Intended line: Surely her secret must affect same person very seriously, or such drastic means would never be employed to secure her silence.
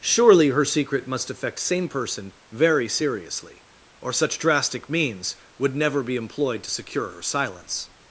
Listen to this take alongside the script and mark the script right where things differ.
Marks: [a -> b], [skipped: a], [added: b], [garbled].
Surely her secret must affect same person very seriously, or such drastic means would never be employed to secure her silence.